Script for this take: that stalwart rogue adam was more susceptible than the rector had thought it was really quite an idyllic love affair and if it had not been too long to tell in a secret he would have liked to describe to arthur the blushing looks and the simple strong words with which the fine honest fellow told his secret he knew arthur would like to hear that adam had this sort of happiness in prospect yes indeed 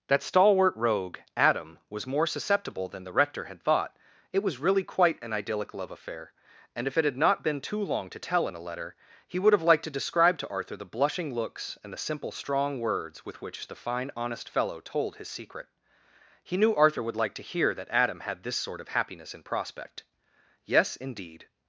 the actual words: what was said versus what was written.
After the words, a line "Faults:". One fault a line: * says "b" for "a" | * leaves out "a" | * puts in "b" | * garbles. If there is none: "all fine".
that stalwart rogue adam was more susceptible than the rector had thought it was really quite an idyllic love affair and if it had not been too long to tell in a letter he would have liked to describe to arthur the blushing looks and the simple strong words with which the fine honest fellow told his secret he knew arthur would like to hear that adam had this sort of happiness in prospect yes indeed
Faults:
* says "letter" for "secret"